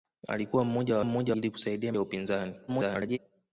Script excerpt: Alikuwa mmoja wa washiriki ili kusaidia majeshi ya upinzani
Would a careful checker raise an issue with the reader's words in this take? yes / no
yes